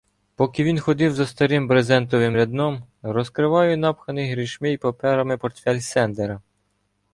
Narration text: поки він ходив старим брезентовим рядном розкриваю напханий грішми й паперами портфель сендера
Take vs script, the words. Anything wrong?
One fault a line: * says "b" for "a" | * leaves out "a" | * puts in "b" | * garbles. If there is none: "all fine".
* puts in "за"